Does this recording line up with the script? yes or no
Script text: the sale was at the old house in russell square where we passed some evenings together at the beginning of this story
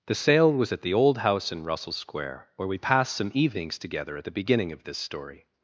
yes